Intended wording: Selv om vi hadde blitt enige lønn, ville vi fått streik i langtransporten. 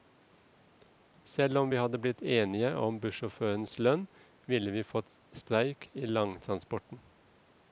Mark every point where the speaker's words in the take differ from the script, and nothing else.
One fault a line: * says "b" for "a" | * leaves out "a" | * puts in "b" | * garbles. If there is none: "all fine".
* puts in "om bussjåførenes"